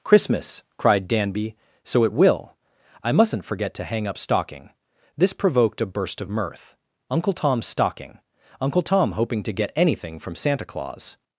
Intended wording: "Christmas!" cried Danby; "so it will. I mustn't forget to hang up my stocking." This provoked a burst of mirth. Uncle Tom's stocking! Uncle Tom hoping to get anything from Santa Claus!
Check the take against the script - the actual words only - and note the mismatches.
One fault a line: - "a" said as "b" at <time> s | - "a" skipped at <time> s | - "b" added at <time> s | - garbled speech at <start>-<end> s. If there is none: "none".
- "my" skipped at 4.2 s